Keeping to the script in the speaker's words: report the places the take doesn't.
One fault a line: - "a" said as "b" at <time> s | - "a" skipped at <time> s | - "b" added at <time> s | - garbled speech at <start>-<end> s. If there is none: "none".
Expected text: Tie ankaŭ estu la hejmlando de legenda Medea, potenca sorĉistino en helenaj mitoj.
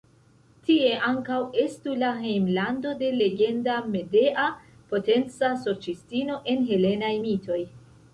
none